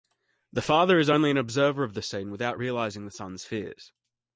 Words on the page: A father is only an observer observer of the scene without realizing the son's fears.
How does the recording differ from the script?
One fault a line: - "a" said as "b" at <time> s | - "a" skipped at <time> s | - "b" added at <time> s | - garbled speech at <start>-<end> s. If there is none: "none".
- "A" said as "The" at 0.5 s
- "observer" skipped at 1.8 s